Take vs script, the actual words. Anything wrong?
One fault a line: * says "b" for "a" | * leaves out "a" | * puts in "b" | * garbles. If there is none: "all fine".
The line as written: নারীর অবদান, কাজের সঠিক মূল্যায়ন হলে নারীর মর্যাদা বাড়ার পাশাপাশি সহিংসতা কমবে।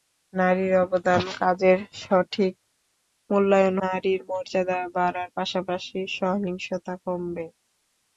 * leaves out "হলে"